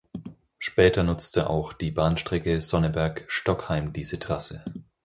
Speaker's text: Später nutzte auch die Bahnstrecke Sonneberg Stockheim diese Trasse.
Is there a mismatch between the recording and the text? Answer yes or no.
no